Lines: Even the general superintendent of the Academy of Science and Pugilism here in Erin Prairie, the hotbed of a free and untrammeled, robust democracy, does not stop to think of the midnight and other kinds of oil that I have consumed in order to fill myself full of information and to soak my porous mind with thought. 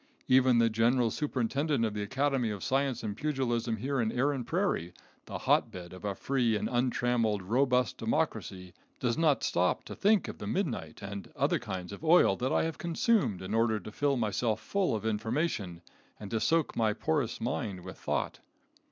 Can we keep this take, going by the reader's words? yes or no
yes